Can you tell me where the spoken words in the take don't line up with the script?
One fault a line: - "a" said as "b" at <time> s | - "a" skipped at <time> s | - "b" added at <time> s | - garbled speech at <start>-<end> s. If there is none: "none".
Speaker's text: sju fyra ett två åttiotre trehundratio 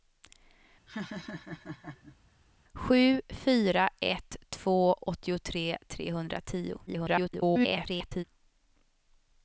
- garbled speech at 6.9-8.2 s